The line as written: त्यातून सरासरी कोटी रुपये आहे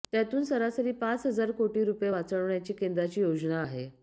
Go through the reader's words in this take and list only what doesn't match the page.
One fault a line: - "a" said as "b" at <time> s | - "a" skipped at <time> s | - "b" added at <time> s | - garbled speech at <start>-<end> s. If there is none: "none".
- "पाच हजार" added at 0.9 s
- "वाचवण्याची केंद्राची योजना" added at 2.1 s